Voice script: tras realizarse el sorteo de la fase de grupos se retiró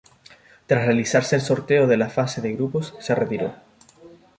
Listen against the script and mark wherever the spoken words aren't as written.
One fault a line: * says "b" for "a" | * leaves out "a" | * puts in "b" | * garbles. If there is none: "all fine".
all fine